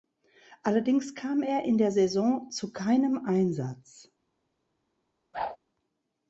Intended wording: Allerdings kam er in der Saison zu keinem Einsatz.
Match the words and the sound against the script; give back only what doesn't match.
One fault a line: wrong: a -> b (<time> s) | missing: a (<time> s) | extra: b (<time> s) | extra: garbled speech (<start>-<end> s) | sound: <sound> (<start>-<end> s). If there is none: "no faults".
sound: whoosh (5.3-5.6 s)